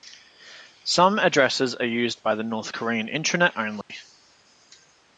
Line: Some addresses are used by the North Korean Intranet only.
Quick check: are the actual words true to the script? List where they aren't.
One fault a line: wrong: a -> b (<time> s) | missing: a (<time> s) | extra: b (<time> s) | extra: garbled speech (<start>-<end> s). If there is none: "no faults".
no faults